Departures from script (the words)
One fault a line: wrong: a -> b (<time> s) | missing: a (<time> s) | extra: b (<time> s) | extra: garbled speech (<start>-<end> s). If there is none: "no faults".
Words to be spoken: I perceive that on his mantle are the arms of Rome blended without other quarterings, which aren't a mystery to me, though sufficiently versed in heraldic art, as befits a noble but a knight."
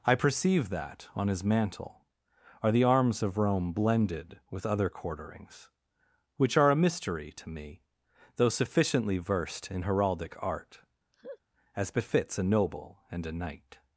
wrong: without -> with (4.5 s)
wrong: aren't -> are (6.6 s)
wrong: but -> and (13.1 s)